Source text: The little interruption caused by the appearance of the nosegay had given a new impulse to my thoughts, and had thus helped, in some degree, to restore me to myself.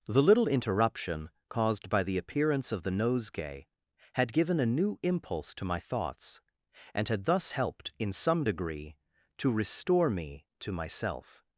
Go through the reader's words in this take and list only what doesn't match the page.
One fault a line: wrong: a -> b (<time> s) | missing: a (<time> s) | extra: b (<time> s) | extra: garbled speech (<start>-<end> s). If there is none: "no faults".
no faults